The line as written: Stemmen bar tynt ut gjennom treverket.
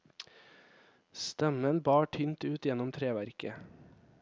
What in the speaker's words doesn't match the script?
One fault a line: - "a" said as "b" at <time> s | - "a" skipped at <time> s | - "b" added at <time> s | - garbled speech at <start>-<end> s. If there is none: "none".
none